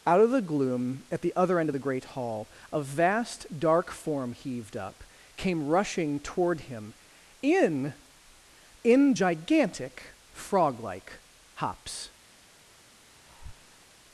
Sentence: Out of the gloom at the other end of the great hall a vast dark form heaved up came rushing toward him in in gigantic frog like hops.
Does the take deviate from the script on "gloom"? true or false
false